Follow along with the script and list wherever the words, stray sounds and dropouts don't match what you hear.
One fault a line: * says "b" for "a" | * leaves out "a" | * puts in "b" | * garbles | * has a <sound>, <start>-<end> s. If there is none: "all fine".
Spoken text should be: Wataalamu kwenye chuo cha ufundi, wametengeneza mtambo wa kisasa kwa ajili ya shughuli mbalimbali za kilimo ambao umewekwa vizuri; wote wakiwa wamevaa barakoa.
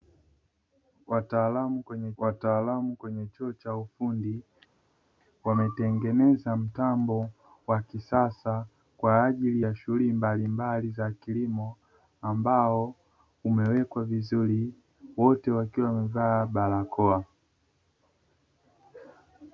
* puts in "wataalamu kwenye"